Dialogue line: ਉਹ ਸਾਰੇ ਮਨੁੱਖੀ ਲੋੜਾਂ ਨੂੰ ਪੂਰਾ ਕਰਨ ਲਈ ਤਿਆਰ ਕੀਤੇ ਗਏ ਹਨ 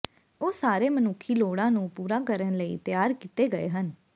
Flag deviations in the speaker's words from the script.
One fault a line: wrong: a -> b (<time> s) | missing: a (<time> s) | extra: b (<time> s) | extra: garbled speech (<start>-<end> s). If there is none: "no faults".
no faults